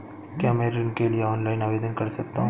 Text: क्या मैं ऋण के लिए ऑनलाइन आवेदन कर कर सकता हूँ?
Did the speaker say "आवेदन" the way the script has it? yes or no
yes